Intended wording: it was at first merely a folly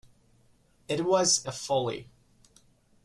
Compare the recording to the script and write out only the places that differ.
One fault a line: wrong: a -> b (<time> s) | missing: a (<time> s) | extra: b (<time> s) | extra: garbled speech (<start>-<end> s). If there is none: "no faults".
missing: at first merely (1.4 s)